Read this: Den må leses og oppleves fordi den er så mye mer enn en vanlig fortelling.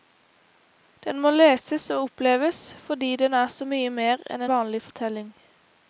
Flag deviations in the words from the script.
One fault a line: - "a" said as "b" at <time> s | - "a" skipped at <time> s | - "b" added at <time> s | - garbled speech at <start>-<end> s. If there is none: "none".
- "en" skipped at 4.5 s